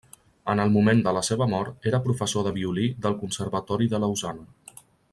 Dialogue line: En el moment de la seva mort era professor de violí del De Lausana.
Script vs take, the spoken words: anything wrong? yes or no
yes